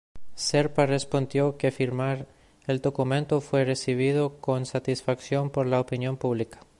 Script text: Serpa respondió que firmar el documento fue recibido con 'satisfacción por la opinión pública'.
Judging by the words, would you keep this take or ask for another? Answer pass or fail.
pass